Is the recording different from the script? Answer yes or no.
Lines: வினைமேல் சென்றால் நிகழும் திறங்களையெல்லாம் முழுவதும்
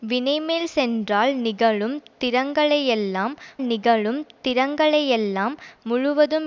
yes